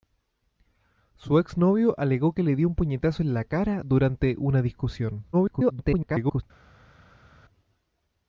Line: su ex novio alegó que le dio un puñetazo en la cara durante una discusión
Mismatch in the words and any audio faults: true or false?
true